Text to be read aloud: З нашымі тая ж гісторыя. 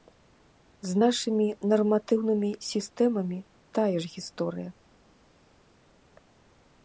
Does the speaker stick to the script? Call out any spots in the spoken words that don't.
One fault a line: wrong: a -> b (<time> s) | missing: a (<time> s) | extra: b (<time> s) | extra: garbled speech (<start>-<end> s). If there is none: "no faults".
extra: нарматыўнымі сістэмамі (1.7 s)